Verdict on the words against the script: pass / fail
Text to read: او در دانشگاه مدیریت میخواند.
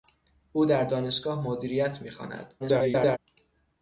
fail